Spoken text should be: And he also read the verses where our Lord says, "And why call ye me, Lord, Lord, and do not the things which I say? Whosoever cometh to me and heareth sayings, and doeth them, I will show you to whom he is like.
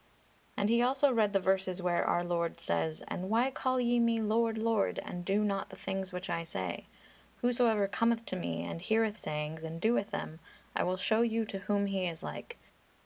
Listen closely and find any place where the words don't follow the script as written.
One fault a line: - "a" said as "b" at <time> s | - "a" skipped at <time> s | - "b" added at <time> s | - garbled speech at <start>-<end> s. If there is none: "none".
none